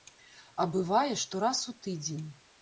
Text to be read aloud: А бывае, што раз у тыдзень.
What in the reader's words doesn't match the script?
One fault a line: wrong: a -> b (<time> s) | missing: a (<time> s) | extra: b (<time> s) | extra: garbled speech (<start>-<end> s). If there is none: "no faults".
no faults